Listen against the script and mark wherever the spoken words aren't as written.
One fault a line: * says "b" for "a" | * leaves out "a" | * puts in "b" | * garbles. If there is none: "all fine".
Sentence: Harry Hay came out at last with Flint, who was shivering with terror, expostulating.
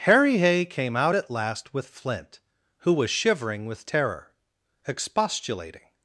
all fine